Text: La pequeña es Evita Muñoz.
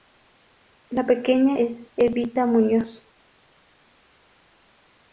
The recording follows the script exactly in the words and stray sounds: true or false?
true